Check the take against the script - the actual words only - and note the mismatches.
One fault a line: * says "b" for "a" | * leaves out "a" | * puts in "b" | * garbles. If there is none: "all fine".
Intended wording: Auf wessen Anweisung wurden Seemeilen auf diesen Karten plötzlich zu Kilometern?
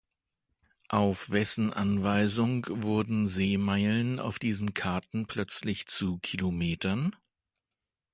all fine